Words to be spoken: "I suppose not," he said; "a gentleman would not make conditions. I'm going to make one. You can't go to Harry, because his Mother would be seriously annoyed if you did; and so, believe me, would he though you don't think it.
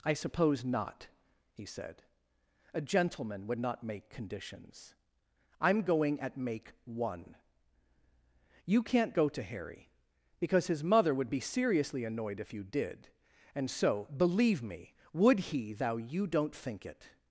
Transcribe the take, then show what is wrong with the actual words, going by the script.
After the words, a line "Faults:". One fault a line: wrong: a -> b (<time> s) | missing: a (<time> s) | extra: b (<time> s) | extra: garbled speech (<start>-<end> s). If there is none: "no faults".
"I suppose not," he said; "a gentleman would not make conditions. I'm going at make one. You can't go to Harry, because his Mother would be seriously annoyed if you did; and so, believe me, would he thou you don't think it.
Faults:
wrong: to -> at (6.2 s)
wrong: though -> thou (15.7 s)